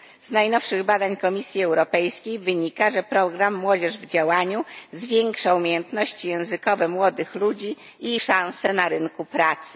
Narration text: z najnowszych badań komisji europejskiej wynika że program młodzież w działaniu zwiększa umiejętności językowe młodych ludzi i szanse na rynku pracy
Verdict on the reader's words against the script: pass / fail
pass